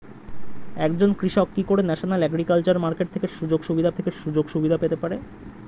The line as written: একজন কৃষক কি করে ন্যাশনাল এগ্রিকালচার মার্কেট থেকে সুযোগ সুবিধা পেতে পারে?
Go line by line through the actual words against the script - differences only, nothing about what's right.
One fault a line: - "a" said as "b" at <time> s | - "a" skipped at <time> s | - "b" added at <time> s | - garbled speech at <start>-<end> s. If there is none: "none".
- "থেকে সুযোগ সুবিধা" added at 3.9 s